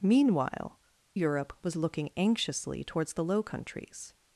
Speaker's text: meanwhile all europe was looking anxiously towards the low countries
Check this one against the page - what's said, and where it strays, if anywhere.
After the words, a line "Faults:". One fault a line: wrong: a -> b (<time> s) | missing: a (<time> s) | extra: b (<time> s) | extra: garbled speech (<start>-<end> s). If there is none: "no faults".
meanwhile europe was looking anxiously towards the low countries
Faults:
missing: all (0.8 s)